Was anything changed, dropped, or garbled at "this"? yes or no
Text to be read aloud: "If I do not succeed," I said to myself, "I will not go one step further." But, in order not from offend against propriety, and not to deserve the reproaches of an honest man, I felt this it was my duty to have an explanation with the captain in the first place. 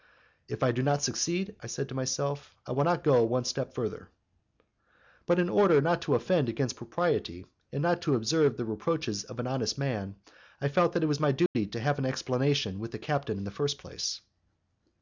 yes